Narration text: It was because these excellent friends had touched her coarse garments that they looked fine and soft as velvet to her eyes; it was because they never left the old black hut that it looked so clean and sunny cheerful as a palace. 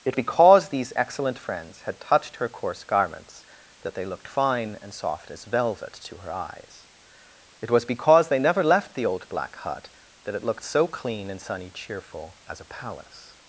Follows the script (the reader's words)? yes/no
no